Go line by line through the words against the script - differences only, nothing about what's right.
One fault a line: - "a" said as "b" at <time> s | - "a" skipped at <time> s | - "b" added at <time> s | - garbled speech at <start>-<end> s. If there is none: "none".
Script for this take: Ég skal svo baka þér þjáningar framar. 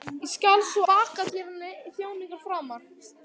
none